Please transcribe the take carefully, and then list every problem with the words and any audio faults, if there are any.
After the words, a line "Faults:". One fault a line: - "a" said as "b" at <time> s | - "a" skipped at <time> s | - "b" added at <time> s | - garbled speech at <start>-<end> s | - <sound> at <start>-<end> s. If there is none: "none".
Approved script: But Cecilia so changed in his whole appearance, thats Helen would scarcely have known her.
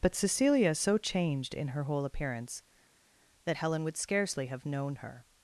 But Cecilia so changed in her whole appearance, that Helen would scarcely have known her.
Faults:
- "his" said as "her" at 1.7 s
- "thats" said as "that" at 3.4 s